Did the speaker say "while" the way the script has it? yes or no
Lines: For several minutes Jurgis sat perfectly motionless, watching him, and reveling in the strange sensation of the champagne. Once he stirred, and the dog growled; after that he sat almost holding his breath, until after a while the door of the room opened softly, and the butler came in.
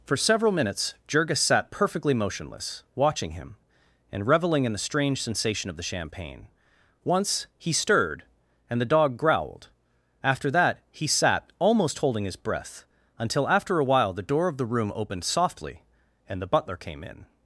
yes